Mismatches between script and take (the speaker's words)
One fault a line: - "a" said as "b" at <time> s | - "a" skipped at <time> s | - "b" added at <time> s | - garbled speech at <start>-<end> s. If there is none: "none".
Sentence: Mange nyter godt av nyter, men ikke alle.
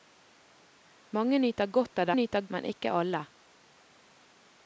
none